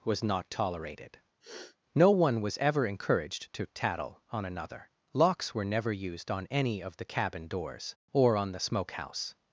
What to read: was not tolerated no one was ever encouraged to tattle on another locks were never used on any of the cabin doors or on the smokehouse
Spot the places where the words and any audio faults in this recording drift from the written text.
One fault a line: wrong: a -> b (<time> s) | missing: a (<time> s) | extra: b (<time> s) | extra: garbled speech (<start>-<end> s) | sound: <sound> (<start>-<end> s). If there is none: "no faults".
sound: sniff (1.4-1.8 s)